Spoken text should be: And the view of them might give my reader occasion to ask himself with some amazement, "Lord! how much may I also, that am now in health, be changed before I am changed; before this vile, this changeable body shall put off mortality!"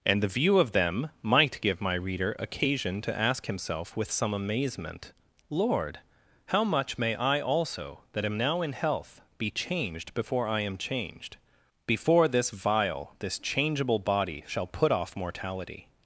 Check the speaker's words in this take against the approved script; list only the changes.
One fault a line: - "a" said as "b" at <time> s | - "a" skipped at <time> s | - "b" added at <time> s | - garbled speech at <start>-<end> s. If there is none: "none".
none